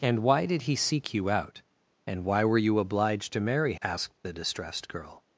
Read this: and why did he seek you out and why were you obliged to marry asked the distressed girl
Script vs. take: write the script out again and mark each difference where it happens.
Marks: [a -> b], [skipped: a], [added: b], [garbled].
and why did he seek you out and why were you obliged to marry asked the distressed girl